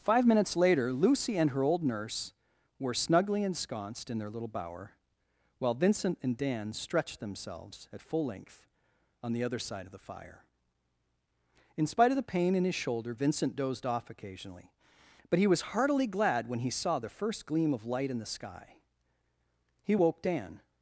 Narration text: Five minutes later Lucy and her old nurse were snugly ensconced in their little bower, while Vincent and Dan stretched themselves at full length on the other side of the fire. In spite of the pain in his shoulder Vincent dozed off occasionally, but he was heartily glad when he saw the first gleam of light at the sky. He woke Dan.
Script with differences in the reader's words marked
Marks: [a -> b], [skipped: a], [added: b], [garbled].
Five minutes later Lucy and her old nurse were snugly ensconced in their little bower, while Vincent and Dan stretched themselves at full length on the other side of the fire. In spite of the pain in his shoulder Vincent dozed off occasionally, but he was heartily glad when he saw the first gleam of light [at -> in] the sky. He woke Dan.